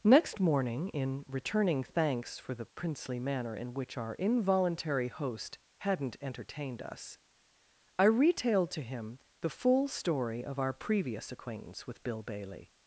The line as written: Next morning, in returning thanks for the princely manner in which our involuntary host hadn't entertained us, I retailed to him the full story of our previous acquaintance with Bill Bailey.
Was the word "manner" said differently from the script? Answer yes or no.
no